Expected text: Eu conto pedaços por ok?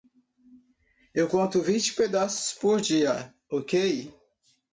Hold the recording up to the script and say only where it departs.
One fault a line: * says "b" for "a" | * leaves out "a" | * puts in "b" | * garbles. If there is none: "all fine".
* puts in "vinte"
* puts in "dia"